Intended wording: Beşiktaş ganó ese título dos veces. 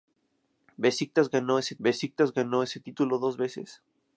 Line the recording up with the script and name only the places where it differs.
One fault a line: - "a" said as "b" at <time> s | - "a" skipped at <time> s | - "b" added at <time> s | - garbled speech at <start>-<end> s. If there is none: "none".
- "beşiktaş ganó ese" added at 1.8 s